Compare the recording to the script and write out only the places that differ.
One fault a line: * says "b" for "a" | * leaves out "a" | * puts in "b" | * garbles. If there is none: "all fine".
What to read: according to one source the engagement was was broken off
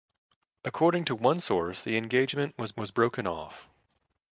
all fine